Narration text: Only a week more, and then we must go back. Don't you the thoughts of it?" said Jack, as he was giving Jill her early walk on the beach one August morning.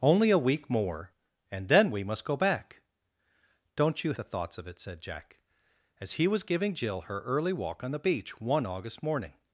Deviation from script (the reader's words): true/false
false